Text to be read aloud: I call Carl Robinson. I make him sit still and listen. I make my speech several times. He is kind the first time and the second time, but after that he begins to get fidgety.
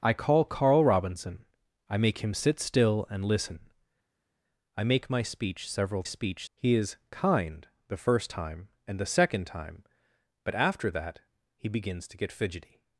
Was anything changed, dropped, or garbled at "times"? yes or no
yes